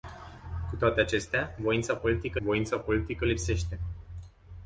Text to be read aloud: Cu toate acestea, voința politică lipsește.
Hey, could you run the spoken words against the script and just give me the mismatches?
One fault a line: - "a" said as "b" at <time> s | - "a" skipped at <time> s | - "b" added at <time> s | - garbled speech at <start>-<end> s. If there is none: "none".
- "voința politică" added at 2.4 s